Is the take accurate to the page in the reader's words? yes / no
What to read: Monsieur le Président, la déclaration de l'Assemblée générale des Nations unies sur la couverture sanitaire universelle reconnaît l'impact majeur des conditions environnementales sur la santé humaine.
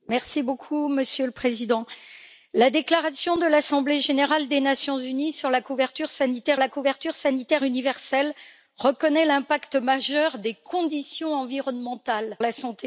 no